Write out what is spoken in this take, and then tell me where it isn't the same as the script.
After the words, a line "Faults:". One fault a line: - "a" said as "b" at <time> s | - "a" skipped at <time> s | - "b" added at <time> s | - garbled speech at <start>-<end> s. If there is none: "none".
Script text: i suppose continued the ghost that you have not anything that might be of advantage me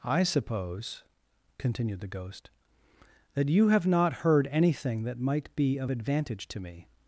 i suppose continued the ghost that you have not heard anything that might be of advantage to me
Faults:
- "heard" added at 4.1 s
- "to" added at 6.5 s